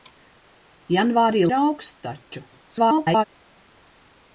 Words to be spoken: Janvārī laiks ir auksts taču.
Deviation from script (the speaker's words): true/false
true